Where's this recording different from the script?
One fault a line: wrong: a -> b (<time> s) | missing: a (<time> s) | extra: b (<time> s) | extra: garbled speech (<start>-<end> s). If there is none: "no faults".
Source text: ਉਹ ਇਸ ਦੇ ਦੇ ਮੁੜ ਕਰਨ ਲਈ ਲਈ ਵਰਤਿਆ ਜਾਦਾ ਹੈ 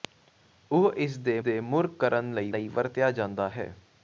no faults